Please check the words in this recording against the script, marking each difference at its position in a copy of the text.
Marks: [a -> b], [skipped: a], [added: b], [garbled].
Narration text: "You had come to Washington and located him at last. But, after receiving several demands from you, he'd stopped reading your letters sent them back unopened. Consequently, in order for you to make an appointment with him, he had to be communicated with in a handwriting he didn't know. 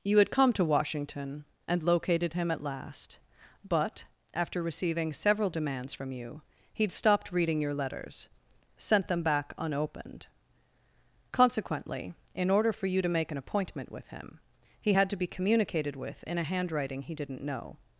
"You had come to Washington and located him at last. But, after receiving several demands from you, he'd stopped reading your letters sent them back unopened. Consequently, in order for you to make an appointment with him, he had to be communicated with in a handwriting he didn't know.